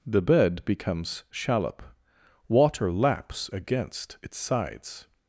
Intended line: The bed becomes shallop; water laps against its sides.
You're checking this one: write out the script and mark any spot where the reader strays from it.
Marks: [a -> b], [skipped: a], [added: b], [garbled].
The bed becomes shallop; water laps against its sides.